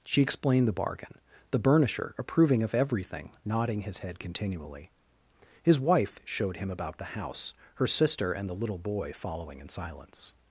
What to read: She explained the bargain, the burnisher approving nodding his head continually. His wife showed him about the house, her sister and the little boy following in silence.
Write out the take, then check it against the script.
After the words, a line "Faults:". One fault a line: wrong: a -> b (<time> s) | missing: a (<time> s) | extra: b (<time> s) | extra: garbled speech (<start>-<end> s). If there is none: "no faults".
She explained the bargain, the burnisher approving of everything, nodding his head continually. His wife showed him about the house, her sister and the little boy following in silence.
Faults:
extra: of everything (2.6 s)